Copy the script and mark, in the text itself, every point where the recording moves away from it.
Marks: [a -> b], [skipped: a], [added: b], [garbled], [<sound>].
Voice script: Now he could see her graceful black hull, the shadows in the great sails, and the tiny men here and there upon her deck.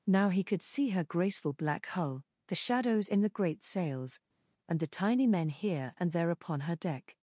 Now he could see her graceful black hull, the shadows in the great sails, and the tiny men here and there upon her deck.